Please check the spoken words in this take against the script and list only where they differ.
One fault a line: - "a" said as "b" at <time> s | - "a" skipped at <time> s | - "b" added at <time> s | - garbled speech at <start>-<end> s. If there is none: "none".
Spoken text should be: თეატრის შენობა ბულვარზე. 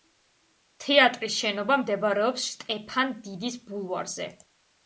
- "მდებარეობს შტეფან დიდის" added at 1.8 s